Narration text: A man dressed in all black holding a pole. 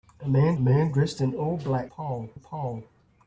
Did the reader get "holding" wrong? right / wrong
wrong